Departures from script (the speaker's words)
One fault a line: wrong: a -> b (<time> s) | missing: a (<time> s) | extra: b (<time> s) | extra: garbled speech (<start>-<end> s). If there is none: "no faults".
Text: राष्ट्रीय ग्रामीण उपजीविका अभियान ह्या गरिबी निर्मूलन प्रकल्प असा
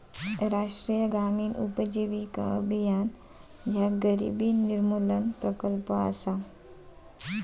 no faults